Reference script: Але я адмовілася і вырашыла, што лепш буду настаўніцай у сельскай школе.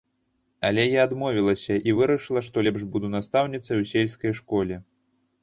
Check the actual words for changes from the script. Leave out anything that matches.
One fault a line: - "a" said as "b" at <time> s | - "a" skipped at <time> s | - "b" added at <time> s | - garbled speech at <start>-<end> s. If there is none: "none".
none